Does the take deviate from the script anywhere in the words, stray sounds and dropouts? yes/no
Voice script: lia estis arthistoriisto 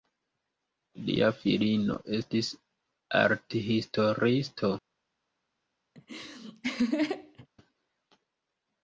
yes